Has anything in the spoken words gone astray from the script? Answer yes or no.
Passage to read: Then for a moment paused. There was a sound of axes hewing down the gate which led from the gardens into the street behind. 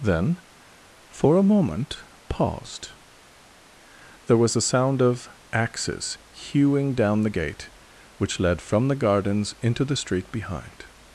no